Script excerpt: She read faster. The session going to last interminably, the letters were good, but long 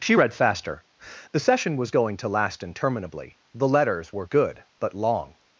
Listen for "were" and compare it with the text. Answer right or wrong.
right